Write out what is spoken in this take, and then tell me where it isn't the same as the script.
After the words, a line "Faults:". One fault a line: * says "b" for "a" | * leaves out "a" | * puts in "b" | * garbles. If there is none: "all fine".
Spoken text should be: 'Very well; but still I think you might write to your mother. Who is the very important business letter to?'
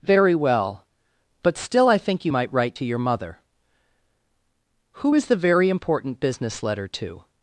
'Very well; but still I think you might write to your mother. Who is the very important business letter to?'
Faults:
all fine